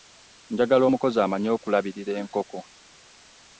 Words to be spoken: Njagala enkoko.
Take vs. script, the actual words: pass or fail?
fail